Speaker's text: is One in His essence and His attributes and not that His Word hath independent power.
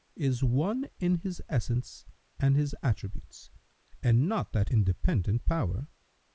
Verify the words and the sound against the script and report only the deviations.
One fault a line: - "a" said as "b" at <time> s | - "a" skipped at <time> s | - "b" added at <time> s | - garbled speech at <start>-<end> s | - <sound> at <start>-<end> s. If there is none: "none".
- "His Word hath" skipped at 4.7 s